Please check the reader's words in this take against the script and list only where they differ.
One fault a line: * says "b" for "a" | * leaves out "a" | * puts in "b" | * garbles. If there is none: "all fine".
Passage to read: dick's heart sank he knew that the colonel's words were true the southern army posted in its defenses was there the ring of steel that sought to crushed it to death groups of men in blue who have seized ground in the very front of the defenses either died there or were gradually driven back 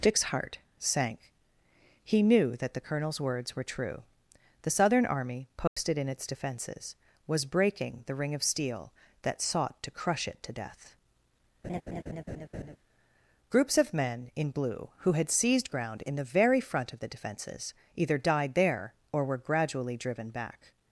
* says "breaking" for "there"
* says "crush" for "crushed"
* says "had" for "have"